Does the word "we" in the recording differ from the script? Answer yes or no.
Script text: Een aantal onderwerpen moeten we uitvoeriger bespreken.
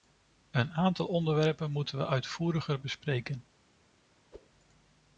no